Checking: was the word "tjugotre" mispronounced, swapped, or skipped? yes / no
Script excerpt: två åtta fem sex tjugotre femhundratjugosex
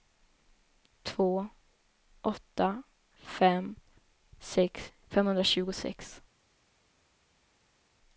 yes